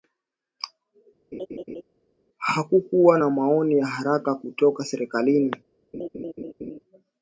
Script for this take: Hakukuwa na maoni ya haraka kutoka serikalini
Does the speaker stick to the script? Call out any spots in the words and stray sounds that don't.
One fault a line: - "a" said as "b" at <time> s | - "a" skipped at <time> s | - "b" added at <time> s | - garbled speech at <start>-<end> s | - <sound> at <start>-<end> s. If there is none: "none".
- laugh at 1.3-1.8 s
- laugh at 5.9-6.8 s